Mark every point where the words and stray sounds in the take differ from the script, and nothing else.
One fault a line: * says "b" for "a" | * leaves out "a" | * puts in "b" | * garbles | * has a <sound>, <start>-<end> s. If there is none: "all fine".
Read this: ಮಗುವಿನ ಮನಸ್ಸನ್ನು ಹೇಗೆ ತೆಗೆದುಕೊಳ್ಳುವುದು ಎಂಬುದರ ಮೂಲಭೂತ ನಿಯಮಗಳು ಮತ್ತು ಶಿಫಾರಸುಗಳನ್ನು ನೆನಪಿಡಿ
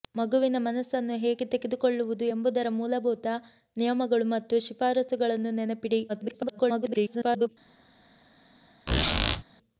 * garbles
* has a squeak, 8.9-9.4 s